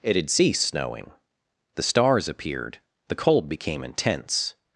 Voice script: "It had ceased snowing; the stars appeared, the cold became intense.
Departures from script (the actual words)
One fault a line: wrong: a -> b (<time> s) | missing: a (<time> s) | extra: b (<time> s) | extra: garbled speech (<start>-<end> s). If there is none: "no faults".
no faults